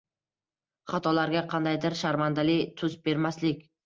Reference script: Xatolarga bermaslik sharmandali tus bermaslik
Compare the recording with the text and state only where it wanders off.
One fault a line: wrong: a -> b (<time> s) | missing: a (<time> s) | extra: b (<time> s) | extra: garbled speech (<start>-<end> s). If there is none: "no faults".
wrong: bermaslik -> qandaydir (1.5 s)